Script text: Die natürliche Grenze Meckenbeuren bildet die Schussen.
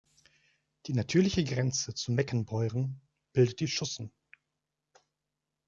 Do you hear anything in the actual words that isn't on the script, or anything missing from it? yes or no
yes